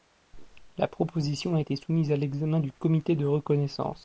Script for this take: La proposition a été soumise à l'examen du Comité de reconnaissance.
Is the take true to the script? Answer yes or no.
yes